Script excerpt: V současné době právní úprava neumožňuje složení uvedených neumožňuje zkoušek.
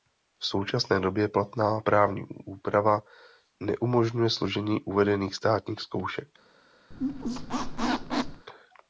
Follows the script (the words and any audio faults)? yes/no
no